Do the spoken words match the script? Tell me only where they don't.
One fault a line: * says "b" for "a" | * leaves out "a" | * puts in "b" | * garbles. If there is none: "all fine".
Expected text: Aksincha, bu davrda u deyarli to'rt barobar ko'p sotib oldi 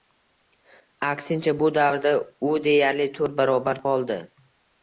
* leaves out "ko'p sotib"